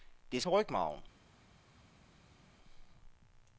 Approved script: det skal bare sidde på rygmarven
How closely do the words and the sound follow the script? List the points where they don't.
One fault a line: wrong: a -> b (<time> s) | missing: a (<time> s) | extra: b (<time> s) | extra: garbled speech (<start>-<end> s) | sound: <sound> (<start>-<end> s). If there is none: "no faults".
missing: skal bare sidde (0.4 s)